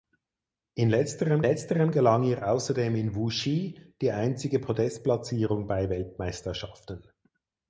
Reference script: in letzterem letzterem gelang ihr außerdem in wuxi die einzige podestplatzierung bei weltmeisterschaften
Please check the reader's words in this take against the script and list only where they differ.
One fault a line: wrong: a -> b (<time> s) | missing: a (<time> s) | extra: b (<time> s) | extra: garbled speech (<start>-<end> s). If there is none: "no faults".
no faults